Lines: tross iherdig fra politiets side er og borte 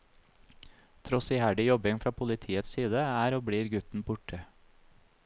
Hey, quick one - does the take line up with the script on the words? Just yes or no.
no